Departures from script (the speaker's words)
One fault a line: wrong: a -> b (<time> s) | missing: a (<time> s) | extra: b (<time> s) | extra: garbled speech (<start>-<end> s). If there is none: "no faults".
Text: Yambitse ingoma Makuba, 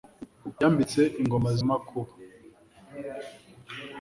no faults